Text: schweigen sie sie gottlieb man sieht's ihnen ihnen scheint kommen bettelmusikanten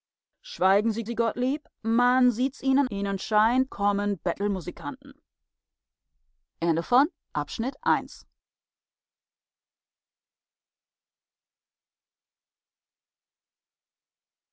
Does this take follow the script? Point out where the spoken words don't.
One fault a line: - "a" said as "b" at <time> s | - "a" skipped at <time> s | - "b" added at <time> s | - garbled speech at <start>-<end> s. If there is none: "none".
none